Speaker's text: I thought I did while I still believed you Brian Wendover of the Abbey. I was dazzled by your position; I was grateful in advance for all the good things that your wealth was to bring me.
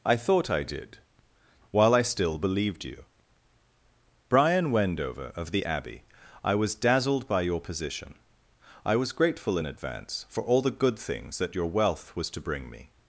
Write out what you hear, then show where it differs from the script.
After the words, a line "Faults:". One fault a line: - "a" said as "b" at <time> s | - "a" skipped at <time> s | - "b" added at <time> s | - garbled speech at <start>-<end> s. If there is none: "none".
I thought I did while I still believed you Brian Wendover of the Abbey. I was dazzled by your position; I was grateful in advance for all the good things that your wealth was to bring me.
Faults:
none